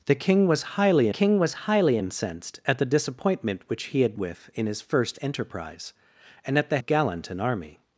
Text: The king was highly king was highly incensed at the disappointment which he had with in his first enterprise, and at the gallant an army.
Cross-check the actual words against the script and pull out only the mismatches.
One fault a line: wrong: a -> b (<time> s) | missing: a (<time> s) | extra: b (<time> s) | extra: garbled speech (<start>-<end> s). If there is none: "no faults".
no faults